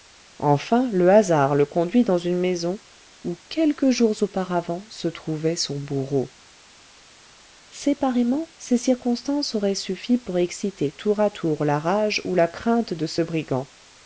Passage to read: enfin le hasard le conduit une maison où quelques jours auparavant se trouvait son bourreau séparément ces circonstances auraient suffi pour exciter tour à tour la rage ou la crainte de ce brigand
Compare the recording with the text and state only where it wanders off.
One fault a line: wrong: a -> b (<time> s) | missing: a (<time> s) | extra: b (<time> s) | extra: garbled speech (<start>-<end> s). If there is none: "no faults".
extra: dans (2.0 s)